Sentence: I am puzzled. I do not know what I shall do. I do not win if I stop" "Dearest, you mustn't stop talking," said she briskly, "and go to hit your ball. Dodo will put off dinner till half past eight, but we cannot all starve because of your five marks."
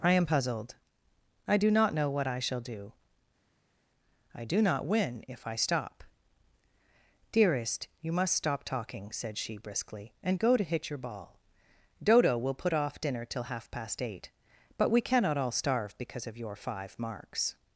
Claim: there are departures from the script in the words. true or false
true